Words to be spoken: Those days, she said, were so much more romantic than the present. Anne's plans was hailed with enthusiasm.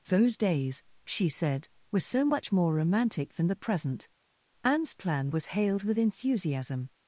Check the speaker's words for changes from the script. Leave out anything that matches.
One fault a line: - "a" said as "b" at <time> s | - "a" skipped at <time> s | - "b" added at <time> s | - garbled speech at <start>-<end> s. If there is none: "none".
- "plans" said as "plan" at 4.9 s